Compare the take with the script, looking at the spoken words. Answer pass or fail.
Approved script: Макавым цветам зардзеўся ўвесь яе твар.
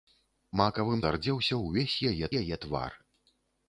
fail